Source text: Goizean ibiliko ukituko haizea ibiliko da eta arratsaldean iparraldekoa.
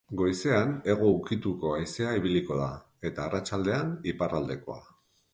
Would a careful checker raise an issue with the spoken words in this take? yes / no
yes